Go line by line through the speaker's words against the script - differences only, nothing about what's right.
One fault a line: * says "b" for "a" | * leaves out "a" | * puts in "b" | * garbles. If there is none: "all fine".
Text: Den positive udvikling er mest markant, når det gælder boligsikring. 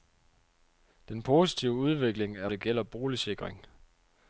* leaves out "mest markant når"